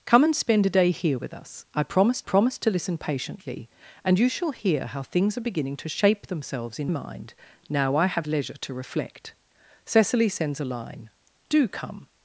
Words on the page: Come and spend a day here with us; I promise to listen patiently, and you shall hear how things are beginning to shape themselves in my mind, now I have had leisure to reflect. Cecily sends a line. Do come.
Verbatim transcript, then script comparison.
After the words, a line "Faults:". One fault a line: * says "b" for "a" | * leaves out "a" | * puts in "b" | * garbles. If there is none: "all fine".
Come and spend a day here with us; I promise promise to listen patiently, and you shall hear how things are beginning to shape themselves in mind, now I have leisure to reflect. Cecily sends a line. Do come.
Faults:
* puts in "promise"
* leaves out "my"
* leaves out "had"